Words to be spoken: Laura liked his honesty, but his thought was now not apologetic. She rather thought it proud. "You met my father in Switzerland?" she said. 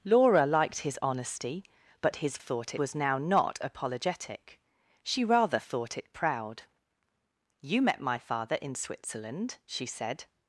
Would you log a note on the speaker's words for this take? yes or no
no